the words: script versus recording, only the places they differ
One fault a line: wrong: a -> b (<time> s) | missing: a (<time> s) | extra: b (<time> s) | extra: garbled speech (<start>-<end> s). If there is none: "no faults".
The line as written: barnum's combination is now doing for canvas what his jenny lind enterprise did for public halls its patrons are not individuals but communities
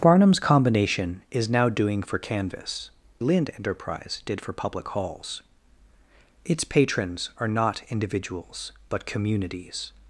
missing: what his jenny (2.9 s)